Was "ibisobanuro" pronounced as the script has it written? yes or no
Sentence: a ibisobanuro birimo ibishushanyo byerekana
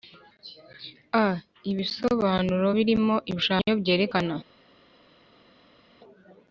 yes